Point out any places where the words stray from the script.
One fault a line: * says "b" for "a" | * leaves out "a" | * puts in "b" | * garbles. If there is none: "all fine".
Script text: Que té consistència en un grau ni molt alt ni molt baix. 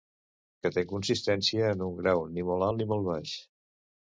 all fine